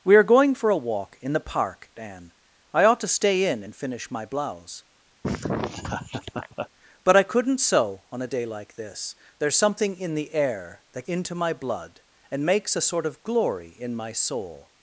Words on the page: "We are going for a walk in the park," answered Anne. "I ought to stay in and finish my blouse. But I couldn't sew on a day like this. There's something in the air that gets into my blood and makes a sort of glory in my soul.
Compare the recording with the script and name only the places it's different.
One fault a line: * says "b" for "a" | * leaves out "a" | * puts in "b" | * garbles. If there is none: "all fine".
* leaves out "answered"
* leaves out "gets"